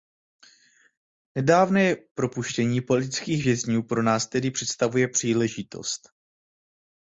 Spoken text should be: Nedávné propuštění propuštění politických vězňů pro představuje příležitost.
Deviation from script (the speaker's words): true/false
true